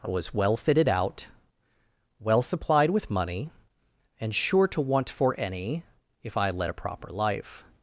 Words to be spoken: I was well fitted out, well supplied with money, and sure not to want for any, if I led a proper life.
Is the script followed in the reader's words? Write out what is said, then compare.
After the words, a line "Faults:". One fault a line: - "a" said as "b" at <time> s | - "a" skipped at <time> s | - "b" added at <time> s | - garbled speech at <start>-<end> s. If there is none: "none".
I was well fitted out, well supplied with money, and sure to want for any, if I led a proper life.
Faults:
- "not" skipped at 4.7 s